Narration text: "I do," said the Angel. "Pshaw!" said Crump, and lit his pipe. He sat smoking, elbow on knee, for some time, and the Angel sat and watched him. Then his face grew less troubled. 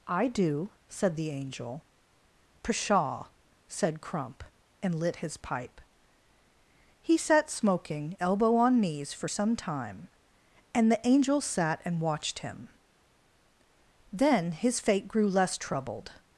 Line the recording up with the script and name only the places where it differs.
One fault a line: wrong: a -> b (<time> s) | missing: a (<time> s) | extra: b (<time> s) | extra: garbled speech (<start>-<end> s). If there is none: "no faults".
wrong: knee -> knees (8.8 s)
wrong: face -> fate (14.8 s)